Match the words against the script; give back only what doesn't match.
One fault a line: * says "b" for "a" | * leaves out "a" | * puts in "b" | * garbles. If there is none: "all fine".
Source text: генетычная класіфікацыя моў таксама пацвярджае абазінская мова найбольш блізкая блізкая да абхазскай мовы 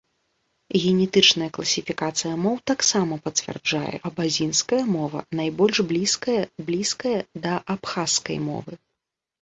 all fine